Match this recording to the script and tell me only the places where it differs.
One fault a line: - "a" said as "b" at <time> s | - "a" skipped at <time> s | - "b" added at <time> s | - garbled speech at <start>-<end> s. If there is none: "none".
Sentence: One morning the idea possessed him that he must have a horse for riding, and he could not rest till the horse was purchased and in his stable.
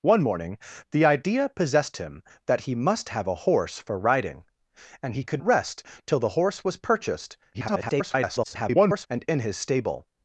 - "not" skipped at 5.4 s
- garbled speech at 7.5-9.1 s